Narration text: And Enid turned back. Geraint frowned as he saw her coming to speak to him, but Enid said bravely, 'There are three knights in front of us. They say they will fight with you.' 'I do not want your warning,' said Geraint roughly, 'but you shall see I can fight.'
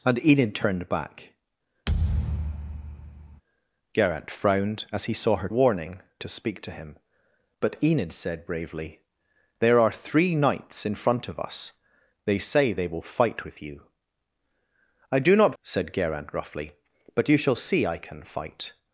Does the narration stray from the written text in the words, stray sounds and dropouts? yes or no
yes